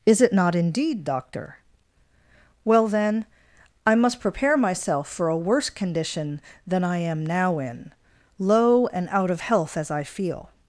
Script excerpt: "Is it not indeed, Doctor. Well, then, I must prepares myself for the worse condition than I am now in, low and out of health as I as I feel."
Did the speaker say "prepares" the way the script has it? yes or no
no